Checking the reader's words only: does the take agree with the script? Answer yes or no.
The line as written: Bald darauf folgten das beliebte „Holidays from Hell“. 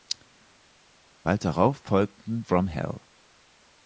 no